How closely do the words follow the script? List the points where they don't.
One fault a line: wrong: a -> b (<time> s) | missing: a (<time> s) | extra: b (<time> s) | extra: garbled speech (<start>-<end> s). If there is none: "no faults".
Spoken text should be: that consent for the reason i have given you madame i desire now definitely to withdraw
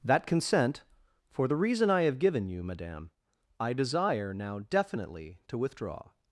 no faults